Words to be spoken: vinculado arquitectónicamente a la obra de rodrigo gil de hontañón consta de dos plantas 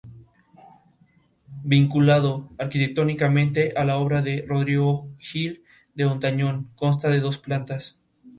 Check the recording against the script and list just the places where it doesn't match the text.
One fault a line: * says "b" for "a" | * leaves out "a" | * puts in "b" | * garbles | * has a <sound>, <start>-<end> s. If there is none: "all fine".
all fine